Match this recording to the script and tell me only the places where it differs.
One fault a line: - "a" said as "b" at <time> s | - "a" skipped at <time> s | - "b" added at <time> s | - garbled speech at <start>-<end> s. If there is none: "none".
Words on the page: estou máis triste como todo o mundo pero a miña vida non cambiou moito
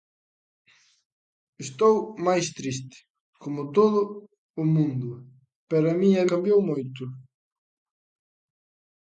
- "vida non" skipped at 6.2 s